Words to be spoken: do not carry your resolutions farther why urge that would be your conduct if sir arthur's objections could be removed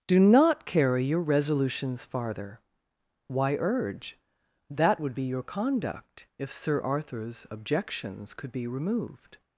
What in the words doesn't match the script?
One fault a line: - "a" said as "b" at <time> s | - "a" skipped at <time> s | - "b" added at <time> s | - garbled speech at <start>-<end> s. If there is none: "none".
none